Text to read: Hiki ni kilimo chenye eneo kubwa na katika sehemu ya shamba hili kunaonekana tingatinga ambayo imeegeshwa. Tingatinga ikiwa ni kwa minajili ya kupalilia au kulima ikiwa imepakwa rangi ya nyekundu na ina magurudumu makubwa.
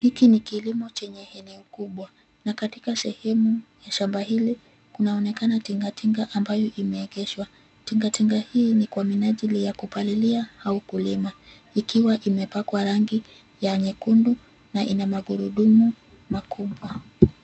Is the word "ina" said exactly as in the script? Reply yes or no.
yes